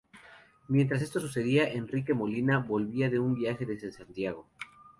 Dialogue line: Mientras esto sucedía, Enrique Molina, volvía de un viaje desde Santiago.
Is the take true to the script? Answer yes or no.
yes